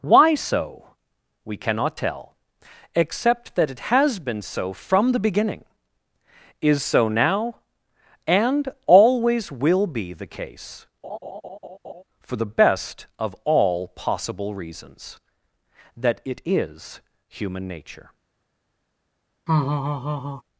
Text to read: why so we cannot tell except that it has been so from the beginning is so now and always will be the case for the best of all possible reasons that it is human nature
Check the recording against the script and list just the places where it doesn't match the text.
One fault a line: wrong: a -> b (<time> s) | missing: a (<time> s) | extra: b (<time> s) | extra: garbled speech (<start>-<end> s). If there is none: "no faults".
no faults